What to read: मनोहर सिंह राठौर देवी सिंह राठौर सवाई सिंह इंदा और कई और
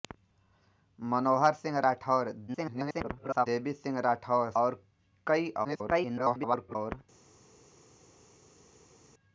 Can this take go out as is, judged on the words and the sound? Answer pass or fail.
fail